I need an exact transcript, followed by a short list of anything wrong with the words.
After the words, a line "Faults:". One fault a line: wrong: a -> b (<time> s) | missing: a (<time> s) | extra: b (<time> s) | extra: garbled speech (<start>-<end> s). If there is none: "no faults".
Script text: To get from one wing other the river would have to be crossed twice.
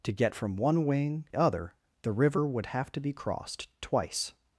To get from one wing other the river would have to be crossed twice.
Faults:
no faults